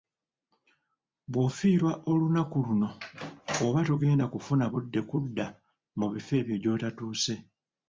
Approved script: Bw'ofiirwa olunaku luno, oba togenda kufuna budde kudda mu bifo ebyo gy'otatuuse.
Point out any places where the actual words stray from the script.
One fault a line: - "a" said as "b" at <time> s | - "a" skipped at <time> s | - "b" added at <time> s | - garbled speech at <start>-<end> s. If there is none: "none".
none